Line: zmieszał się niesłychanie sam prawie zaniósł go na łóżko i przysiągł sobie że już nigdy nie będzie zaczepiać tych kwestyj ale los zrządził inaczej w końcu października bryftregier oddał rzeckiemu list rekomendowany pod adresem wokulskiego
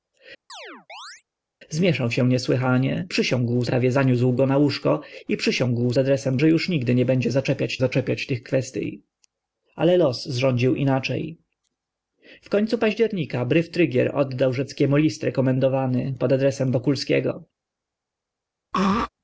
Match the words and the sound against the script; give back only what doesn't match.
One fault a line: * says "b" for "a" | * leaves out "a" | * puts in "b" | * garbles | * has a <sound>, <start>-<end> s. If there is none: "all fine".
* has a chirp, 0.5-1.2 s
* says "przysiągł" for "sam"
* says "adresem" for "sobie"
* puts in "zaczepiać"
* has a throat clearing, 18.7-19.1 s